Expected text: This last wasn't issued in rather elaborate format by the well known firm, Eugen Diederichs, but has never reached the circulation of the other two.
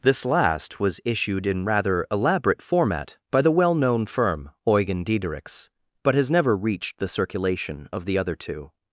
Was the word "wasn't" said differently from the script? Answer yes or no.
yes